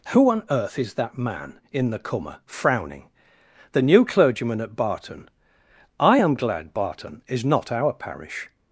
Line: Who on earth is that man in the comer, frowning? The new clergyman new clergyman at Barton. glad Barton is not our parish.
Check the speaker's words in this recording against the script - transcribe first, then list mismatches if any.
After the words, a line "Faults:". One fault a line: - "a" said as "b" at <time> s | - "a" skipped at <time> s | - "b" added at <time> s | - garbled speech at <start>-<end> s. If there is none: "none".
Who on earth is that man in the comer, frowning? The new clergyman at Barton. I am glad Barton is not our parish.
Faults:
- "new clergyman at Barton" said as "at Barton I am" at 4.6 s